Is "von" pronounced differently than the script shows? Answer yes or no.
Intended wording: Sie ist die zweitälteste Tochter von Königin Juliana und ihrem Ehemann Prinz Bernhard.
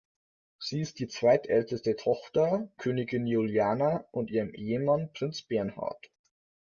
yes